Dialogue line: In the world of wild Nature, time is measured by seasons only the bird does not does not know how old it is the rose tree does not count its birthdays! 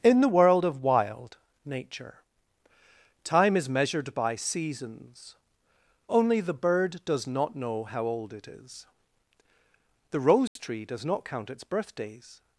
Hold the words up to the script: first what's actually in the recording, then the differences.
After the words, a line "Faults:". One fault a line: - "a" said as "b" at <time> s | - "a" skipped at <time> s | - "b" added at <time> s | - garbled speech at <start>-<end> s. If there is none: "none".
In the world of wild Nature, time is measured by seasons only the bird does not know how old it is the rose tree does not count its birthdays!
Faults:
- "does not" skipped at 7.5 s